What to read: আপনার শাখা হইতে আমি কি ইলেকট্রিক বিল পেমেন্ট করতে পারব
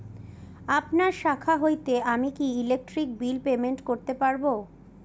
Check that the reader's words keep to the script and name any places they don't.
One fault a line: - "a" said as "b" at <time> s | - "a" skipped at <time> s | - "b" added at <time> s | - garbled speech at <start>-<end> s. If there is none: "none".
none